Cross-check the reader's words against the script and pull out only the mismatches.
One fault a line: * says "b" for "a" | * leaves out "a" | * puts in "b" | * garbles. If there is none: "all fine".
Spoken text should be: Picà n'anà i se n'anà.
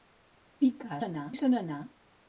all fine